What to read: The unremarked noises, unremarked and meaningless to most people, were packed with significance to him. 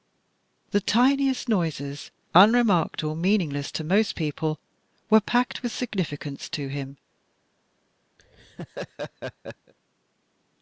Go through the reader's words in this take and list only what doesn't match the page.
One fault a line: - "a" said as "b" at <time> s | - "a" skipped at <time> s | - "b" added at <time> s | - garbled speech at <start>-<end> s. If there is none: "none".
- "unremarked" said as "tiniest" at 0.8 s
- "and" said as "or" at 3.0 s